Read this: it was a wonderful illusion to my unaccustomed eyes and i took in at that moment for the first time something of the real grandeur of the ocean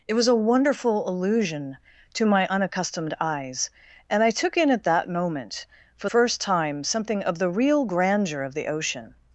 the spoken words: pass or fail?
fail